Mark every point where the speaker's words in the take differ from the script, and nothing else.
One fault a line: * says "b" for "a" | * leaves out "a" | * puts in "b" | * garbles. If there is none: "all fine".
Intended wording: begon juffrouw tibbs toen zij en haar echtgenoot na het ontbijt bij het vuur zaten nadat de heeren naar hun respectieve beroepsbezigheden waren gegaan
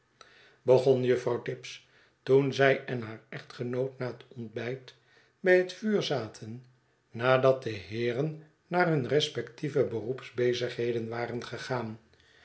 all fine